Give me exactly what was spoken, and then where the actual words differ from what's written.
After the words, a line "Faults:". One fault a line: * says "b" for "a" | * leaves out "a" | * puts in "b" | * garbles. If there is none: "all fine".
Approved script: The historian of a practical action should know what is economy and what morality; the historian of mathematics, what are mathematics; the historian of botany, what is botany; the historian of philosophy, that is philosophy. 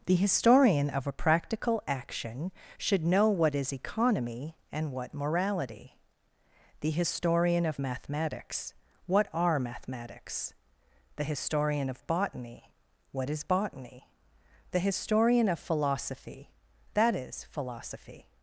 The historian of a practical action should know what is economy and what morality; the historian of mathematics, what are mathematics; the historian of botany, what is botany; the historian of philosophy, that is philosophy.
Faults:
all fine